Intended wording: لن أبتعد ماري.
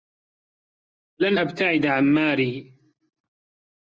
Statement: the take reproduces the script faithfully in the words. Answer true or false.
false